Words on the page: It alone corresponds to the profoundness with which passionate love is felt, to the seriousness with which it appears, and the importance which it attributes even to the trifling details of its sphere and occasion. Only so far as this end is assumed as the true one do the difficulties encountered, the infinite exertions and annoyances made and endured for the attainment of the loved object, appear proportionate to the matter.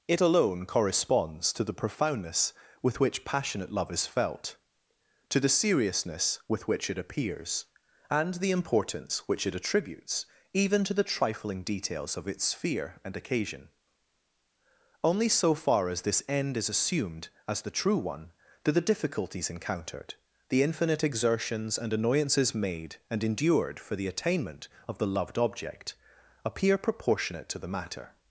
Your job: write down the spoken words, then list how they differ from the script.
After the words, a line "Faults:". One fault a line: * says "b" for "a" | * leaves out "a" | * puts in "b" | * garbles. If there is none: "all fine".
It alone corresponds to the profoundness with which passionate love is felt, to the seriousness with which it appears, and the importance which it attributes even to the trifling details of its sphere and occasion. Only so far as this end is assumed as the true one do the difficulties encountered, the infinite exertions and annoyances made and endured for the attainment of the loved object, appear proportionate to the matter.
Faults:
all fine